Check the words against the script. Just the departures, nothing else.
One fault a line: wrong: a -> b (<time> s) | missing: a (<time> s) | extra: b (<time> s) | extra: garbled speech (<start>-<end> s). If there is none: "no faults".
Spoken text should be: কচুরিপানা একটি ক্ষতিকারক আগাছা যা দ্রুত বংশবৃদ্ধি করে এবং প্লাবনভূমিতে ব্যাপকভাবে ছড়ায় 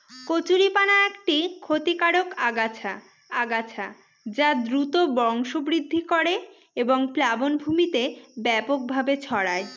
extra: আগাছা (3.4 s)